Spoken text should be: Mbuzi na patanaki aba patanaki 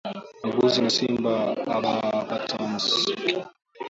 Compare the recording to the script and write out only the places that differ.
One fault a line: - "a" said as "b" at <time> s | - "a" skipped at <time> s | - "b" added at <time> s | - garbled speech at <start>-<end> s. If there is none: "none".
- "patanaki" said as "simba" at 1.0 s